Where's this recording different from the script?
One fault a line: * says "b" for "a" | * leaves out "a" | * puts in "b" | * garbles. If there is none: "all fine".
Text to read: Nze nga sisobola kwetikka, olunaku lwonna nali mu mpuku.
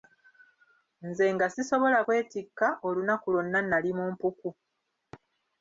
all fine